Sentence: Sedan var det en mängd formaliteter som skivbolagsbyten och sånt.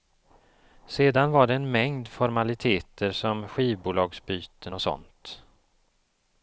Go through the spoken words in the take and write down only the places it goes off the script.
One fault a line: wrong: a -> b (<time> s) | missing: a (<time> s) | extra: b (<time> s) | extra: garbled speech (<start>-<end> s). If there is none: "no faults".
no faults